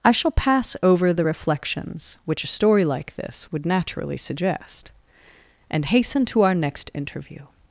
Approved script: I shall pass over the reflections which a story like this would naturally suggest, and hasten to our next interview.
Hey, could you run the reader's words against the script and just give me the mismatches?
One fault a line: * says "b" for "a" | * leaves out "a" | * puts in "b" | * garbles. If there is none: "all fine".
all fine